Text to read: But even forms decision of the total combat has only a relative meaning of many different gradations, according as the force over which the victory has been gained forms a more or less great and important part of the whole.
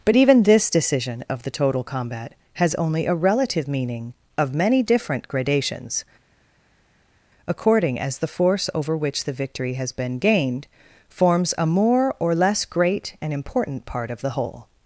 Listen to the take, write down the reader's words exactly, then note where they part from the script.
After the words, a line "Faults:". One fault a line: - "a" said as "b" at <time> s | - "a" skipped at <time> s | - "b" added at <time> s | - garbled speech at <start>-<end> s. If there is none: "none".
But even this decision of the total combat has only a relative meaning of many different gradations, according as the force over which the victory has been gained forms a more or less great and important part of the whole.
Faults:
- "forms" said as "this" at 0.4 s